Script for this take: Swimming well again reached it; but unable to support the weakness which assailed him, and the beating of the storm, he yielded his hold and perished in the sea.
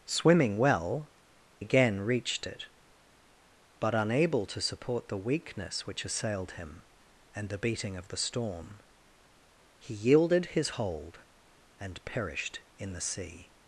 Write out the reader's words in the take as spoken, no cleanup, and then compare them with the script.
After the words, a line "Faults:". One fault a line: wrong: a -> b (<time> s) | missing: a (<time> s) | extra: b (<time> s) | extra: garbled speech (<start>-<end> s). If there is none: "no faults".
Swimming well again reached it; but unable to support the weakness which assailed him, and the beating of the storm, he yielded his hold and perished in the sea.
Faults:
no faults